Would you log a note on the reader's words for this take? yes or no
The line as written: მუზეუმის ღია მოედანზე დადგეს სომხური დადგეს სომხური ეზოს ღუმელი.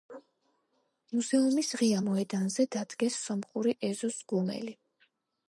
yes